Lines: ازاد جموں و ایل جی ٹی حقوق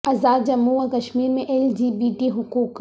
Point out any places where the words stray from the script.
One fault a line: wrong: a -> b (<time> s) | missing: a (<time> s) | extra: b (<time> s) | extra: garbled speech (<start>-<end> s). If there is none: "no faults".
extra: کشمیر میں (0.9 s)
extra: بی (1.9 s)